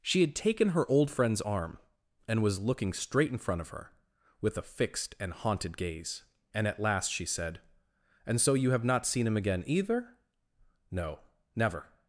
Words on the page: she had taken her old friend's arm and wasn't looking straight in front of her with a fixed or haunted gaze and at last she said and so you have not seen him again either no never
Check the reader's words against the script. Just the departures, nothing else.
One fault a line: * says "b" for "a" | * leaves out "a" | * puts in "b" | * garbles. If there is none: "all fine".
* says "was" for "wasn't"
* says "and" for "or"